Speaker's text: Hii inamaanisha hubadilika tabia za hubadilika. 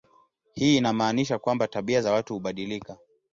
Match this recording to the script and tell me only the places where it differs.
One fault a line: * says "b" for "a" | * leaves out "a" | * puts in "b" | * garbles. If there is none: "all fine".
* says "kwamba" for "hubadilika"
* puts in "watu"